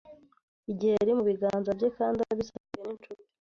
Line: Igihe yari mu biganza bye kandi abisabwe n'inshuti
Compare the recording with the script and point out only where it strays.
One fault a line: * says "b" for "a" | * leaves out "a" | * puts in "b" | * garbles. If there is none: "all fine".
all fine